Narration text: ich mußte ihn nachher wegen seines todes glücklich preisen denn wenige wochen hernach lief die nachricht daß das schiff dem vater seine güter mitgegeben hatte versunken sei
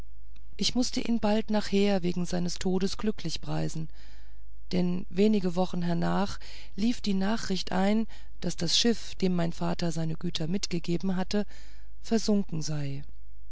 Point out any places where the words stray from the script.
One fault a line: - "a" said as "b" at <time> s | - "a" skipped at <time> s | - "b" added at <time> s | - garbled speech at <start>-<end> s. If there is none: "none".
- "bald" added at 1.2 s
- "ein" added at 7.7 s
- "mein" added at 9.3 s